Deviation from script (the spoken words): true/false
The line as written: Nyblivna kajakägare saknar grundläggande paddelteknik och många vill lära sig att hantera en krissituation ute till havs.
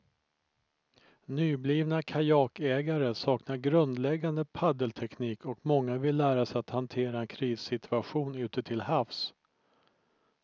false